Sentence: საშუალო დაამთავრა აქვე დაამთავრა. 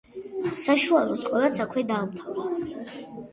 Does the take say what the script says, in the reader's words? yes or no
no